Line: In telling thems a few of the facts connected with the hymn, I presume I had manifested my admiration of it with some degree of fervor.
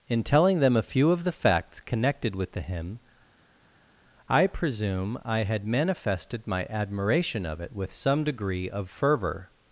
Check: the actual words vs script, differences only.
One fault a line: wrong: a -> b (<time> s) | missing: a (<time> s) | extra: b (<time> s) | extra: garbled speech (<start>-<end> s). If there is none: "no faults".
wrong: thems -> them (0.6 s)